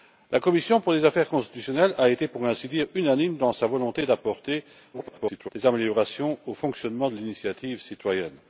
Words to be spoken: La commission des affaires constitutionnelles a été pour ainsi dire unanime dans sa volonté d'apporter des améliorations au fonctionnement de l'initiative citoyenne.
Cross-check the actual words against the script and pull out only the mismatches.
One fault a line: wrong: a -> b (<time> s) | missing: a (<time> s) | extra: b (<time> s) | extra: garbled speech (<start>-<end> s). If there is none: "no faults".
extra: garbled speech (4.9-5.5 s)